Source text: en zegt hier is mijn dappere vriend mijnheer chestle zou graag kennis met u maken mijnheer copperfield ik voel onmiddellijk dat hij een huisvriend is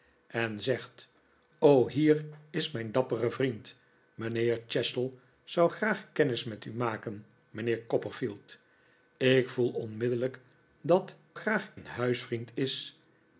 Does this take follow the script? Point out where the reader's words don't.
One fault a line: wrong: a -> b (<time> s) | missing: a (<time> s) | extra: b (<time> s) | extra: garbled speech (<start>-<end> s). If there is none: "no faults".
wrong: hij -> graag (11.4 s)